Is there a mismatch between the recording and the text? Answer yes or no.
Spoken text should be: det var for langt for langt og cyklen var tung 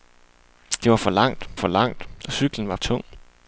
no